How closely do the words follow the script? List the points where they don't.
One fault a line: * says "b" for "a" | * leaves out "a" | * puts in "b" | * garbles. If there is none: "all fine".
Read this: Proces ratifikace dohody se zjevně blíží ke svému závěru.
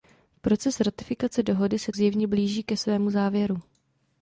all fine